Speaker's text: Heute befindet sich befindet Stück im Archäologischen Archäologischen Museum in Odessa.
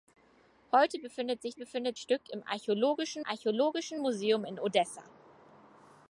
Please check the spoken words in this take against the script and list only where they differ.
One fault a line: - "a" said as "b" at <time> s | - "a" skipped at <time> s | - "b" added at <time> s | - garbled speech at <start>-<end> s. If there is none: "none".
none